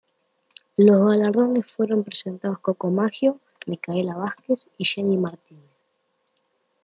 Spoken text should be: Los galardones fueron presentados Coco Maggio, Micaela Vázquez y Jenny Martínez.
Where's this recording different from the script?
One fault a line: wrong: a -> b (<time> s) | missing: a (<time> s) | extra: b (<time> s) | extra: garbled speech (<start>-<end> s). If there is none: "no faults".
no faults